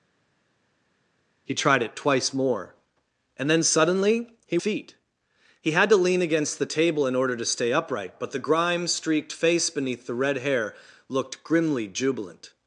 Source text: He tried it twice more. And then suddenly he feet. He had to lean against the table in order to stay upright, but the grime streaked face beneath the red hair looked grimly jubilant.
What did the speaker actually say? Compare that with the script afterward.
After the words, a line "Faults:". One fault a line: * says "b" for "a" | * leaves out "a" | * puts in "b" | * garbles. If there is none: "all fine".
He tried it twice more. And then suddenly he feet. He had to lean against the table in order to stay upright, but the grime streaked face beneath the red hair looked grimly jubilant.
Faults:
all fine